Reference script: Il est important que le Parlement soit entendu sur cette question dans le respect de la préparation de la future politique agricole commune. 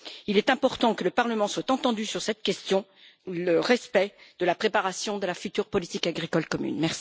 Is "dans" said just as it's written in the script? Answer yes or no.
no